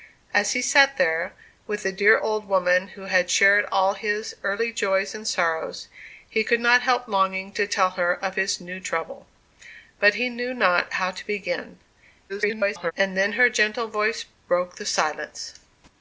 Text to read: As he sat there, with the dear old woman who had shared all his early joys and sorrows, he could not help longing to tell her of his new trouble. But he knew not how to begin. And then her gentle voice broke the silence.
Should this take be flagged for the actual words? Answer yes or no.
yes